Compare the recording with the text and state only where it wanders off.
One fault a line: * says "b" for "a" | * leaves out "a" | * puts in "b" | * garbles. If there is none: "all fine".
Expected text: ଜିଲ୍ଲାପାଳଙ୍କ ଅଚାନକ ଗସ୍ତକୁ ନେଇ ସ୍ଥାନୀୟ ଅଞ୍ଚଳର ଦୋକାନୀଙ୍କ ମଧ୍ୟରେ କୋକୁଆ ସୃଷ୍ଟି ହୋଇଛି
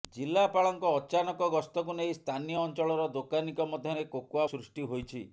all fine